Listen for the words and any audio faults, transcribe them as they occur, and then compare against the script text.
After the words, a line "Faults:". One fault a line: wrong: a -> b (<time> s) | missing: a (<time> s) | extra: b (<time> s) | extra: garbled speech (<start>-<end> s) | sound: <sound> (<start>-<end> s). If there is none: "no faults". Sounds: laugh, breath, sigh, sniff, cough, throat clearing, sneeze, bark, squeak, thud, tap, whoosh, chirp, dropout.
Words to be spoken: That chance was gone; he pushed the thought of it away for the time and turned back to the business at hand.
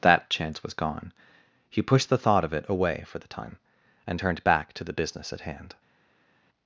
That chance was gone; he pushed the thought of it away for the time and turned back to the business at hand.
Faults:
no faults